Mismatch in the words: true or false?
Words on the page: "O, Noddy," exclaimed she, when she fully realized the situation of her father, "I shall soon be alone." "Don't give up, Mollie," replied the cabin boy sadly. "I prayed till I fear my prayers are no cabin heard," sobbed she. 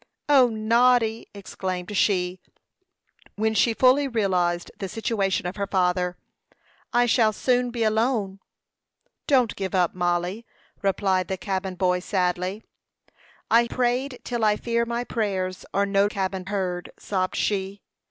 false